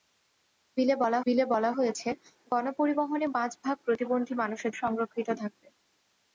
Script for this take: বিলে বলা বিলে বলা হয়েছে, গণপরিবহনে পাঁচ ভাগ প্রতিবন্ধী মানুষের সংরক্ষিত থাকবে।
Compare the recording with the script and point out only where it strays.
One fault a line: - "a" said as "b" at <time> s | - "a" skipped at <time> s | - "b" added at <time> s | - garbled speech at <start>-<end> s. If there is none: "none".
none